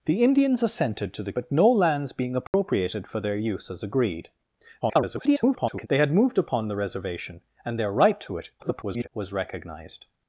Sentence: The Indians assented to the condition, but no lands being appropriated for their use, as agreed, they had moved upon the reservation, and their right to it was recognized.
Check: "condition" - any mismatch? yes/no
yes